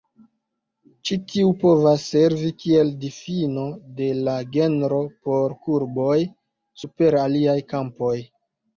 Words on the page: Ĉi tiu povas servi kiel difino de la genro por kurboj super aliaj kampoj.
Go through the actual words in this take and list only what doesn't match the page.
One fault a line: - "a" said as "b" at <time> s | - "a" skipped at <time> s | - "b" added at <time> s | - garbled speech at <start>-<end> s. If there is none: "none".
none